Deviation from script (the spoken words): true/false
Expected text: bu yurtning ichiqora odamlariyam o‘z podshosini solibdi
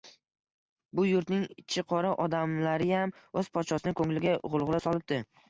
true